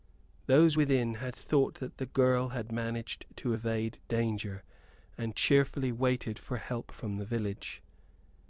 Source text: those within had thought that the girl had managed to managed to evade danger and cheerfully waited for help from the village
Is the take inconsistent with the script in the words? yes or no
yes